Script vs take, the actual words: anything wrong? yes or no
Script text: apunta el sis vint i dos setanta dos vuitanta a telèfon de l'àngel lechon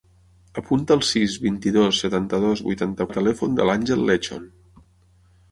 no